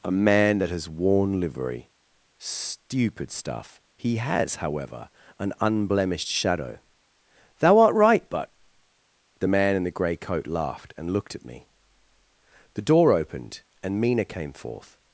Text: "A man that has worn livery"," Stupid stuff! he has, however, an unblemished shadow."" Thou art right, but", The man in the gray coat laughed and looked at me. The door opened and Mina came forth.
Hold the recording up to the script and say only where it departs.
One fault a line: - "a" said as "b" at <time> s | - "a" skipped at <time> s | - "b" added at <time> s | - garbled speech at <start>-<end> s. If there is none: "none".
none